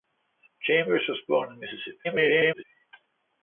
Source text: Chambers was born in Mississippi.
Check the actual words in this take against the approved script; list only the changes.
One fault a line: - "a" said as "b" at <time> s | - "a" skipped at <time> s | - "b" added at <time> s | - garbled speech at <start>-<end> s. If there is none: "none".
- garbled speech at 2.0-2.6 s